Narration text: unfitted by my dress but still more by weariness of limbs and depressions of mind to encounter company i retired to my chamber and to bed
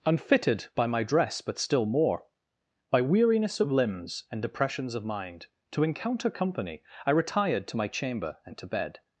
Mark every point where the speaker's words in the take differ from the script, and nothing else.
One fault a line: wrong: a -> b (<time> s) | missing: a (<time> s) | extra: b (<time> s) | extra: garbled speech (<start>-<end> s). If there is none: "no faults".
no faults